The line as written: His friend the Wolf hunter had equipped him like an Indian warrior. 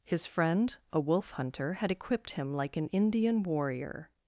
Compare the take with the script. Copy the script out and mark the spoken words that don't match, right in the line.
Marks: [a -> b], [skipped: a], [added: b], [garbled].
His friend [the -> a] Wolf hunter had equipped him like an Indian warrior.